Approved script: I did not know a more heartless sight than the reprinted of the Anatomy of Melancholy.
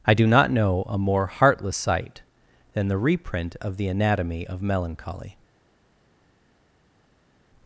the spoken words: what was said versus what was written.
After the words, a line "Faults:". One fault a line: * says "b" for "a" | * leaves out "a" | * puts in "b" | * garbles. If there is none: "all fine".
I do not know a more heartless sight than the reprint of the Anatomy of Melancholy.
Faults:
* says "do" for "did"
* says "reprint" for "reprinted"